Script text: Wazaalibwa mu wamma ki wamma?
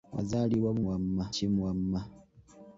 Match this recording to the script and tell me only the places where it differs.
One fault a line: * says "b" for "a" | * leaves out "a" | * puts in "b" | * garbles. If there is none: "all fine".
all fine